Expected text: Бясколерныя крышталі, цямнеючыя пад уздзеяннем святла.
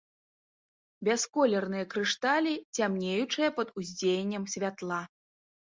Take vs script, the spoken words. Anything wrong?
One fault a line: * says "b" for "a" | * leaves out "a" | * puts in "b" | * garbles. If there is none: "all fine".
all fine